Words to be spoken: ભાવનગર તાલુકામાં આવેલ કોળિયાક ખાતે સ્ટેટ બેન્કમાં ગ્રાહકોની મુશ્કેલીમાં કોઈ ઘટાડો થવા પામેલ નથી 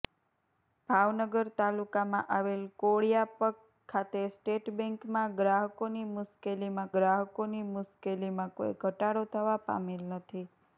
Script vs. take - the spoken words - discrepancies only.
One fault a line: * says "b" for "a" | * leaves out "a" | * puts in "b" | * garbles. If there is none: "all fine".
* puts in "ગ્રાહકોની મુશ્કેલીમાં"